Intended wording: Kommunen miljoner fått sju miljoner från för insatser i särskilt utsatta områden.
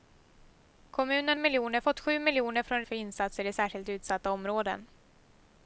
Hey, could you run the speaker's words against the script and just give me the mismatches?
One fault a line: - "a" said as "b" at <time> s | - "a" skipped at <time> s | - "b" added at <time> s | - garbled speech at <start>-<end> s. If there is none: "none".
none